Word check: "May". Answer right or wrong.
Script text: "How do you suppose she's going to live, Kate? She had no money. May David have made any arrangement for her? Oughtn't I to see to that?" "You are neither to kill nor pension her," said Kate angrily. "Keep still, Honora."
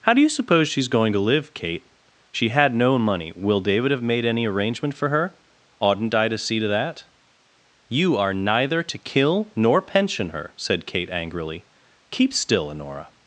wrong